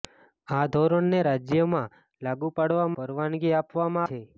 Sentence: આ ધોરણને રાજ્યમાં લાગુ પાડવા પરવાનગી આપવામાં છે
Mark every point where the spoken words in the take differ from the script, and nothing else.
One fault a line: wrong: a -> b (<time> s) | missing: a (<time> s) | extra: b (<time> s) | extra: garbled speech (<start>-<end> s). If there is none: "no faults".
no faults